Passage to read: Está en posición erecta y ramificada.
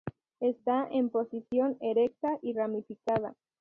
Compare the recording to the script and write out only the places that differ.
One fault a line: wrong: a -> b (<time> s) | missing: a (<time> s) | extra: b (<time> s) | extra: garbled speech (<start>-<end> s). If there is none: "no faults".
no faults